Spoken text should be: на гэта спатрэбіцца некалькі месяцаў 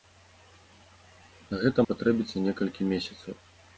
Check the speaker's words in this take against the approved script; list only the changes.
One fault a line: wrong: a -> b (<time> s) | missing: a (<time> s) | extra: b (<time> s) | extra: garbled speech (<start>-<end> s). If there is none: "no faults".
no faults